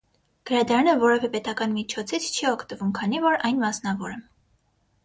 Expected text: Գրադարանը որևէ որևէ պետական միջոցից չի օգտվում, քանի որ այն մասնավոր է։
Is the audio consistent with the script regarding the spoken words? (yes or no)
no